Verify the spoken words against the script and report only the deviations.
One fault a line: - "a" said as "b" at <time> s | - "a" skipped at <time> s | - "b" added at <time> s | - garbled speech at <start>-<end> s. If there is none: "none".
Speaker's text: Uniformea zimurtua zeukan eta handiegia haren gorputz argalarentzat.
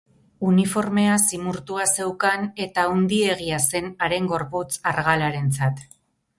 - "zen" added at 3.7 s